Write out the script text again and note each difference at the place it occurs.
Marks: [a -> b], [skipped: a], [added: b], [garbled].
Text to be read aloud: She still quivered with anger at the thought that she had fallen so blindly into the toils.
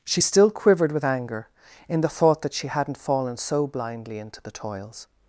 She still quivered with anger [at -> in] the thought that she [had -> hadn't] fallen so blindly into the toils.